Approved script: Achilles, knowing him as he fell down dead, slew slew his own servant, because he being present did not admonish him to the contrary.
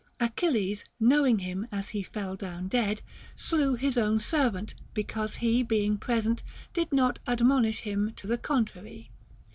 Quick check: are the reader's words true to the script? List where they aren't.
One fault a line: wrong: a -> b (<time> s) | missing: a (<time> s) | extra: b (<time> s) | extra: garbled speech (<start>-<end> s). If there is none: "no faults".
missing: slew (3.8 s)